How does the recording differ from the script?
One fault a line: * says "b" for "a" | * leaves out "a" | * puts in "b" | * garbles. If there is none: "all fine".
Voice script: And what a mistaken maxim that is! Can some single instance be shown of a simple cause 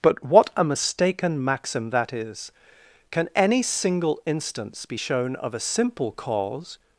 * says "But" for "And"
* says "any" for "some"